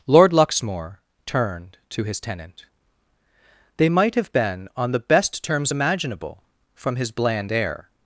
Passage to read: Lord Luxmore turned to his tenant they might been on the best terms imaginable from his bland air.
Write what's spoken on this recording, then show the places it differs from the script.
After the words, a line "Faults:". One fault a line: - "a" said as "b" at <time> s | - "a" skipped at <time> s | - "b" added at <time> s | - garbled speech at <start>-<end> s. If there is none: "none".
Lord Luxmore turned to his tenant they might have been on the best terms imaginable from his bland air.
Faults:
- "have" added at 4.2 s